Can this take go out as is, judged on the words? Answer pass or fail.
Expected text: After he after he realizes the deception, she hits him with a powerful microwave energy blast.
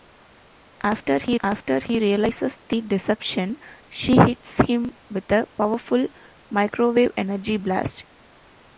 pass